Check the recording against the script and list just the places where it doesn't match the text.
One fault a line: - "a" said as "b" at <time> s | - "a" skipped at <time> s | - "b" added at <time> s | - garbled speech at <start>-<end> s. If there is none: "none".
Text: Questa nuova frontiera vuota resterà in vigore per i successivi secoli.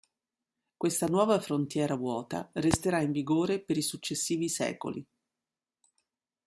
none